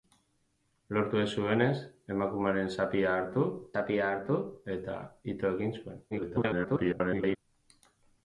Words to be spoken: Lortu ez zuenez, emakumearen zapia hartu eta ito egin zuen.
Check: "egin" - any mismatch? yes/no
no